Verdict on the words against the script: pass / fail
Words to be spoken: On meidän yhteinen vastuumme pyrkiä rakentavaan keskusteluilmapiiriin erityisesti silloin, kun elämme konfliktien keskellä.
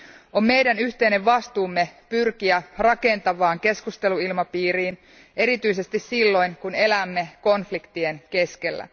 pass